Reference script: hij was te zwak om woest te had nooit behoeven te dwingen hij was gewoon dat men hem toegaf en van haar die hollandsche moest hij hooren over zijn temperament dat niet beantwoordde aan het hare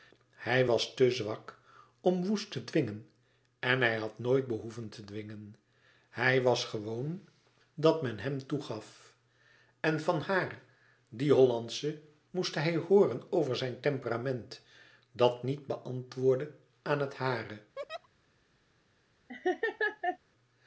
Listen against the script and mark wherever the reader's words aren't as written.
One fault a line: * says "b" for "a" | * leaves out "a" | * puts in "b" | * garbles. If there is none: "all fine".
* puts in "dwingen en hij"